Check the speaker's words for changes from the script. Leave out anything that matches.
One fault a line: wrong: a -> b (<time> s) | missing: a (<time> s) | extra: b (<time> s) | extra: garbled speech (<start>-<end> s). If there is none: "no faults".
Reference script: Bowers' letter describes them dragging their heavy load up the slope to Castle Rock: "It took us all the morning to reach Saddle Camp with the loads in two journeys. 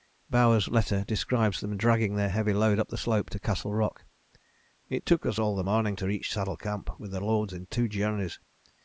no faults